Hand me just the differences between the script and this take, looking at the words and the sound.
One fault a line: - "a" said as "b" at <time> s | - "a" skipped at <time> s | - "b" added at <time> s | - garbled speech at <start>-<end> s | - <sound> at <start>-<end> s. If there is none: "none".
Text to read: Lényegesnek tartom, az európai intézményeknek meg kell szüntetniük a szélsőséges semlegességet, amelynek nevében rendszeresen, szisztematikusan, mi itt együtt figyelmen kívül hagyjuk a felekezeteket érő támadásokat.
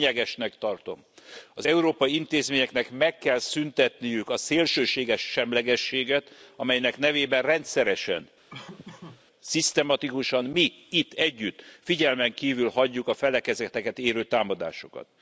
- laugh at 8.5-9.2 s